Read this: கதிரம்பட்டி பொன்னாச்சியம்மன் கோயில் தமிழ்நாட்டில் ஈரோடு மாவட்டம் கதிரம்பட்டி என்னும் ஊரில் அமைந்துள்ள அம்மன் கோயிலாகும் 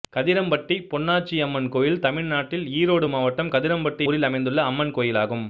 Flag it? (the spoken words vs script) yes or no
yes